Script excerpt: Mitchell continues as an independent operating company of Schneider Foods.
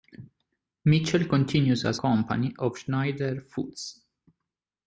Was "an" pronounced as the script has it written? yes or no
no